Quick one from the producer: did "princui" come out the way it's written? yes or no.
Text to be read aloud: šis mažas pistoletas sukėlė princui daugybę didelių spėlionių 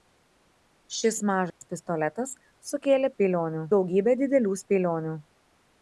no